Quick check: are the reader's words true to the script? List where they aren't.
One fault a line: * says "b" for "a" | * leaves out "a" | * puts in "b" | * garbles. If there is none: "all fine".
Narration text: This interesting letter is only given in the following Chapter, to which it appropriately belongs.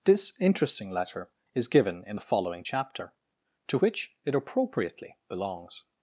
* leaves out "only"